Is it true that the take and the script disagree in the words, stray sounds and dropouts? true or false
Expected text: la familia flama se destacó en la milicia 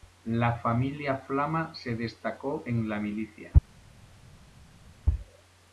false